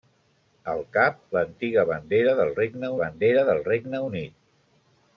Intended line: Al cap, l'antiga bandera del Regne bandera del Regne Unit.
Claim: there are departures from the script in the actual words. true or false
false